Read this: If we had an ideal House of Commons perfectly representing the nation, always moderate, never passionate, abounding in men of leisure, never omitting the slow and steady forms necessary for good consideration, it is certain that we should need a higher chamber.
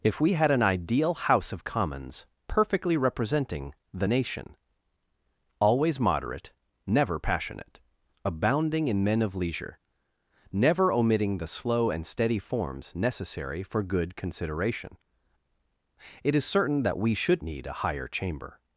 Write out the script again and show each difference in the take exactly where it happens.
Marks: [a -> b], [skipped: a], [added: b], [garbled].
If we had an ideal House of Commons perfectly representing the nation, always moderate, never passionate, abounding in men of leisure, never omitting the slow and steady forms necessary for good consideration, it is certain that we should need a higher chamber.